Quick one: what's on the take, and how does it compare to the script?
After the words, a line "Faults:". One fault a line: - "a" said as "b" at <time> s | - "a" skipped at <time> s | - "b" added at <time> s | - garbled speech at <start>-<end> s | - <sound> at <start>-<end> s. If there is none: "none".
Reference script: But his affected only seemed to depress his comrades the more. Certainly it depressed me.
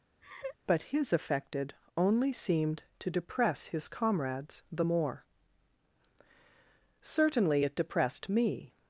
But his affected only seemed to depress his comrades the more. Certainly it depressed me.
Faults:
- laugh at 0.2-0.6 s